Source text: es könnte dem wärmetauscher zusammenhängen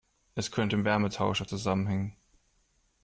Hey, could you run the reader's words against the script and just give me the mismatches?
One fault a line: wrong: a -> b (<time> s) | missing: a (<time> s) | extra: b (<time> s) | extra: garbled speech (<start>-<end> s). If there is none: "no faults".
no faults